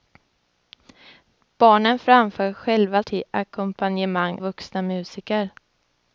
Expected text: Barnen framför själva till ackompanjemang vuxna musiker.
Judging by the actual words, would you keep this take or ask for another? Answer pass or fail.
pass